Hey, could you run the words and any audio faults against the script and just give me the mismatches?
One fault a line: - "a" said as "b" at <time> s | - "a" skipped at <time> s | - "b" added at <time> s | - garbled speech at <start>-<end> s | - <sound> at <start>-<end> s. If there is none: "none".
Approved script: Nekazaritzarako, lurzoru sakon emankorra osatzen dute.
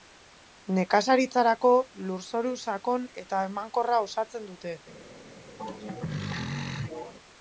- "eta" added at 3.3 s
- throat clearing at 5.6-7.1 s